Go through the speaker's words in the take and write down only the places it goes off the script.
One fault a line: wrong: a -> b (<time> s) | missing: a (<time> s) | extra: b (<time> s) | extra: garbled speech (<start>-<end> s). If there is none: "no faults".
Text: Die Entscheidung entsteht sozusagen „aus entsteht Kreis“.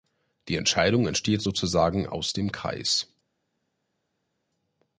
wrong: entsteht -> dem (2.3 s)